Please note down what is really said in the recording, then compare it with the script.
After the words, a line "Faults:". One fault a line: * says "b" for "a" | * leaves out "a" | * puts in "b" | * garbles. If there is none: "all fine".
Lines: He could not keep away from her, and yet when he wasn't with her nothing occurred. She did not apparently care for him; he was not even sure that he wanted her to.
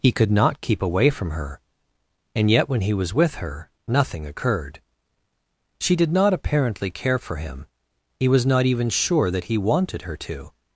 He could not keep away from her, and yet when he was with her nothing occurred. She did not apparently care for him; he was not even sure that he wanted her to.
Faults:
* says "was" for "wasn't"